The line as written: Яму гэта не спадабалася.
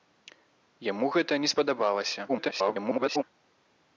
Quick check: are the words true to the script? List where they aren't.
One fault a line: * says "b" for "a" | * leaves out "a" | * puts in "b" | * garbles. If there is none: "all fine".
* garbles